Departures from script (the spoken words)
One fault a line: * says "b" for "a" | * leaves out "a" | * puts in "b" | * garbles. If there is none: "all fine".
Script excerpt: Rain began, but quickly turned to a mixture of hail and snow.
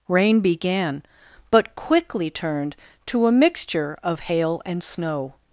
all fine